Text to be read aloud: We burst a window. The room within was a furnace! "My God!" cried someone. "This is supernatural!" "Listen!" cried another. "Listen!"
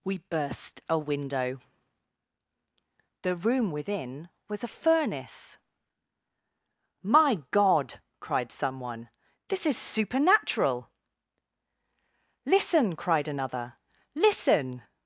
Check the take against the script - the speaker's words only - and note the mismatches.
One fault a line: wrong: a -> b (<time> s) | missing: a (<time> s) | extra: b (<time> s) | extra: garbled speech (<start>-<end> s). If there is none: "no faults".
no faults